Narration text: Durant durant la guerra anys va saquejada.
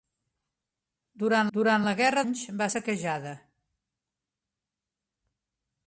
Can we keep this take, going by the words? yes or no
yes